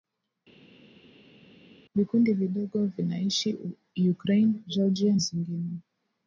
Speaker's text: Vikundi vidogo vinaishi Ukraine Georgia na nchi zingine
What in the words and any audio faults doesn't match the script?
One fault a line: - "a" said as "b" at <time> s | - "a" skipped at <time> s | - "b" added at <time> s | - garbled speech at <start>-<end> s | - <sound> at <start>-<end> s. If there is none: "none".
- "na nchi" skipped at 5.1 s